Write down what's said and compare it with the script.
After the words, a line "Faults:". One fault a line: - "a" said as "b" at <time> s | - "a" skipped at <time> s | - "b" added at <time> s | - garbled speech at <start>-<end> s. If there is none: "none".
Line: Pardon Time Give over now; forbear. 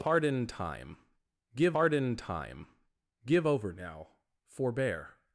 Pardon Time Give pardon Time Give over now; forbear.
Faults:
- "pardon Time Give" added at 1.7 s